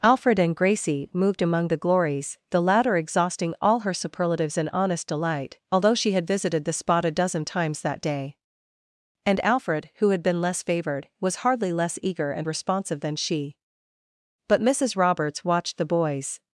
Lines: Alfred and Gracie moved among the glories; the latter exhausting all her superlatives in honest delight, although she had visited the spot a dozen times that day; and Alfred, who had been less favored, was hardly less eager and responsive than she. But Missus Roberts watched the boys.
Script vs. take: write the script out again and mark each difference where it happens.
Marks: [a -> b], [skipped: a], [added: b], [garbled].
Alfred and Gracie moved among the glories; the latter exhausting all her superlatives in honest delight, although she had visited the spot a dozen times that day; and Alfred, who had been less favored, was hardly less eager and responsive than she. But Missus Roberts watched the boys.